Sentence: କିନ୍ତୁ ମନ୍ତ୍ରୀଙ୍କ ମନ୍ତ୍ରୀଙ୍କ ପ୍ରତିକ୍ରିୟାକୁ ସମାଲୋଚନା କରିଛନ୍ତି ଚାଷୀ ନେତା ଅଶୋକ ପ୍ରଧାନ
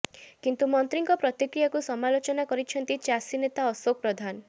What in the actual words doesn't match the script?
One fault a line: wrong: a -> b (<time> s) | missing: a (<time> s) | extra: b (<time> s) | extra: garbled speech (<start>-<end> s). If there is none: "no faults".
missing: ମନ୍ତ୍ରୀଙ୍କ (1.2 s)